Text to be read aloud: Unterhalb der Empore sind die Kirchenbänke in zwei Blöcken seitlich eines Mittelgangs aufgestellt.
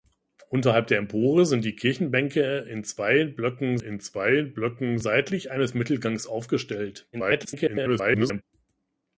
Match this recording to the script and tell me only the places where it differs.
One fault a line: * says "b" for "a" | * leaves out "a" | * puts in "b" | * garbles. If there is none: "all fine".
* puts in "in zwei Blöcken"
* garbles